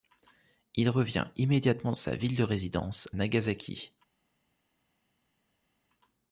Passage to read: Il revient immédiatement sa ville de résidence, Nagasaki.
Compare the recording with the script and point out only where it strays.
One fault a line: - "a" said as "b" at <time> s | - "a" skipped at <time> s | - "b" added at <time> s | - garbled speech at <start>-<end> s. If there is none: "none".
none